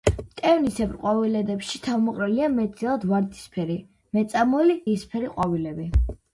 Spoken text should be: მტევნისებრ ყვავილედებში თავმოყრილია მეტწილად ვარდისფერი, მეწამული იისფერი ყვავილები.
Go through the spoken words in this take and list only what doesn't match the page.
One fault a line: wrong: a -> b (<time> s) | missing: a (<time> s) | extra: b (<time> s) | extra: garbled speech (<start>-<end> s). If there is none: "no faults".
no faults